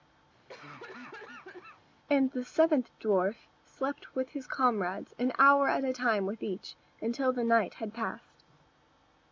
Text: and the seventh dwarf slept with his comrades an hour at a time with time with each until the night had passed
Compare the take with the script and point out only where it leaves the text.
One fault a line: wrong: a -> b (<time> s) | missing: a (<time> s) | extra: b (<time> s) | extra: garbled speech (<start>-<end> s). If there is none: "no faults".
missing: time with (6.4 s)